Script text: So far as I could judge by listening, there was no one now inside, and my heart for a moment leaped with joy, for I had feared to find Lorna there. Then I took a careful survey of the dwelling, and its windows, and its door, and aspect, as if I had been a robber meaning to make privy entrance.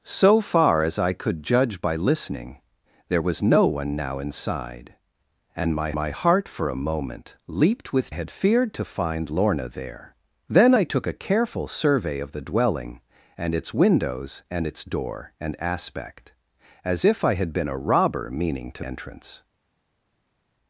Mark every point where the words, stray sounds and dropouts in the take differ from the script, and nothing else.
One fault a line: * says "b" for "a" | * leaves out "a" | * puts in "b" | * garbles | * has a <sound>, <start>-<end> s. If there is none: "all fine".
* puts in "my"
* leaves out "joy for I"
* leaves out "make privy"